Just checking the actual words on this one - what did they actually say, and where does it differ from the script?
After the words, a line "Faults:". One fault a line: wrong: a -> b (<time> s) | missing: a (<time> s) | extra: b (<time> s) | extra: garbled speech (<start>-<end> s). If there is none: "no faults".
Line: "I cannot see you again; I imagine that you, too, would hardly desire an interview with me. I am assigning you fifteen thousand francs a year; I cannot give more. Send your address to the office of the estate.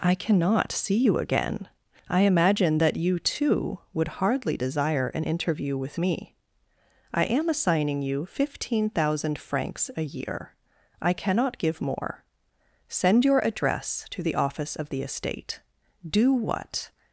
"I cannot see you again; I imagine that you, too, would hardly desire an interview with me. I am assigning you fifteen thousand francs a year; I cannot give more. Send your address to the office of the estate. Do what
Faults:
extra: Do what (16.1 s)